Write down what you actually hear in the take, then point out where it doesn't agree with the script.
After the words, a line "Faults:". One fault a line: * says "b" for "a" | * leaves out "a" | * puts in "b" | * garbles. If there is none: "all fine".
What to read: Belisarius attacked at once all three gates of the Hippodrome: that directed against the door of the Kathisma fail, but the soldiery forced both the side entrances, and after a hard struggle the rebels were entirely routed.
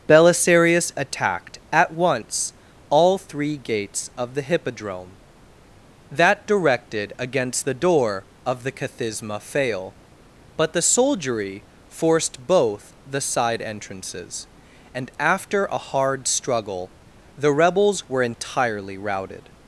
Belisarius attacked at once all three gates of the Hippodrome: that directed against the door of the Kathisma fail, but the soldiery forced both the side entrances, and after a hard struggle the rebels were entirely routed.
Faults:
all fine